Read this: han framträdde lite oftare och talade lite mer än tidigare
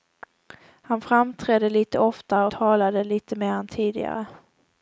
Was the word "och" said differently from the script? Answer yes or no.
yes